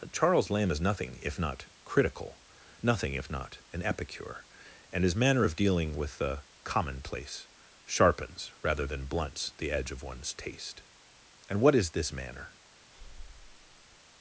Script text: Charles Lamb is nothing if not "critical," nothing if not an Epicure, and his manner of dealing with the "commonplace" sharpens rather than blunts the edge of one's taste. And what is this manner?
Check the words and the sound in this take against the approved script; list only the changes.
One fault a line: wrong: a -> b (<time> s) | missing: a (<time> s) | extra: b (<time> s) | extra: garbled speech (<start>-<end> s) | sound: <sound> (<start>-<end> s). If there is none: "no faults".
sound: breath (12.9-14.0 s)